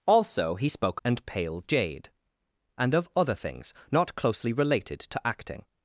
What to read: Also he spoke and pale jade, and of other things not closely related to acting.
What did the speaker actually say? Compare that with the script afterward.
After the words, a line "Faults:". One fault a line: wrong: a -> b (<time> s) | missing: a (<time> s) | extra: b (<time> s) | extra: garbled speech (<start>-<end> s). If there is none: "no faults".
Also he spoke and pale jade, and of other things not closely related to acting.
Faults:
no faults